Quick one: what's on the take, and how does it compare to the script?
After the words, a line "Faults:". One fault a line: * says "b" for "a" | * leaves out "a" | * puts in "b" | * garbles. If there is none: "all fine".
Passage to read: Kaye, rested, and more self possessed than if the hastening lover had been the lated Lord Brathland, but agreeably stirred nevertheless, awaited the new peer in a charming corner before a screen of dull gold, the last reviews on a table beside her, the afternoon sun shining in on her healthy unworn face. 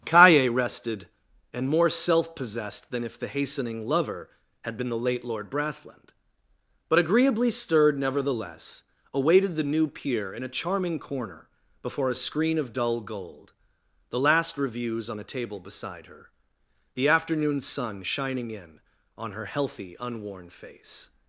Kaye, rested, and more self possessed than if the hastening lover had been the late Lord Brathland, but agreeably stirred nevertheless, awaited the new peer in a charming corner before a screen of dull gold, the last reviews on a table beside her, the afternoon sun shining in on her healthy unworn face.
Faults:
* says "late" for "lated"